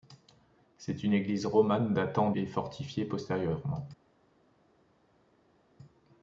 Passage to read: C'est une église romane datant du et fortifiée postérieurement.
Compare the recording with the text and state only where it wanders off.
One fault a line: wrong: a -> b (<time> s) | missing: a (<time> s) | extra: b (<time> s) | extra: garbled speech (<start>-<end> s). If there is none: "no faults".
missing: du (2.3 s)